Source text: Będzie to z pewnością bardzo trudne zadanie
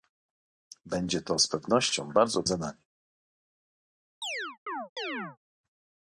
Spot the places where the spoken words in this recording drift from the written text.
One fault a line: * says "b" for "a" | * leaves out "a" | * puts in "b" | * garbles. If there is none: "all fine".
* leaves out "trudne"